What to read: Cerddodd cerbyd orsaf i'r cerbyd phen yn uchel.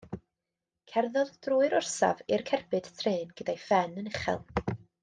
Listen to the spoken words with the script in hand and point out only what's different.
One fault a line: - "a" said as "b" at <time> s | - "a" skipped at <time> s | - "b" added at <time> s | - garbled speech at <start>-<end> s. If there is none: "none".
- "cerbyd" said as "drwy'r" at 1.5 s
- "trên gyda'i" added at 3.0 s